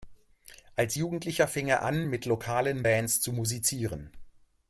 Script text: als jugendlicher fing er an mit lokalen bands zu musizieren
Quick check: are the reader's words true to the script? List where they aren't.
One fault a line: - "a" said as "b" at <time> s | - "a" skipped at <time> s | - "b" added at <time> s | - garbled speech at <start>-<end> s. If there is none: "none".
none